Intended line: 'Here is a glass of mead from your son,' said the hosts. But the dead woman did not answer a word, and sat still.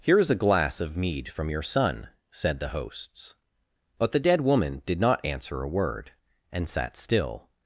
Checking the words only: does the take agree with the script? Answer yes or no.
yes